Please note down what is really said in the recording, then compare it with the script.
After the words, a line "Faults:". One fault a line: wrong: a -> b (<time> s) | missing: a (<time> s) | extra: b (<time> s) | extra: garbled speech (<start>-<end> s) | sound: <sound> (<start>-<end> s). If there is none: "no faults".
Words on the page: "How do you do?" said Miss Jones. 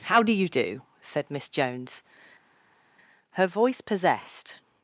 "How do you do?" said Miss Jones. Her voice possessed
Faults:
extra: Her voice possessed (3.3 s)